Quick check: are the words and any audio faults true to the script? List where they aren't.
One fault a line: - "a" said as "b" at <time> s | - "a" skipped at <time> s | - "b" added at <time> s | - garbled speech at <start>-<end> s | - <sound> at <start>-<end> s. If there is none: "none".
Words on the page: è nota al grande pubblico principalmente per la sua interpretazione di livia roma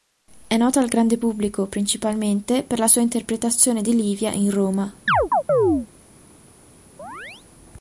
- "in" added at 4.3 s
- chirp at 5.1-5.9 s
- chirp at 7.0-7.5 s